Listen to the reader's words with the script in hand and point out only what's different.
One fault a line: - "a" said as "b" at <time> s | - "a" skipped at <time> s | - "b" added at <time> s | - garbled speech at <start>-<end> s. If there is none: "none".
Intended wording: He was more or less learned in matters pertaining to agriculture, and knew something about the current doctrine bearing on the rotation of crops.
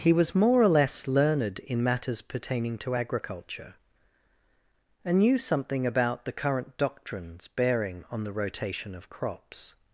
- "doctrine" said as "doctrines" at 6.8 s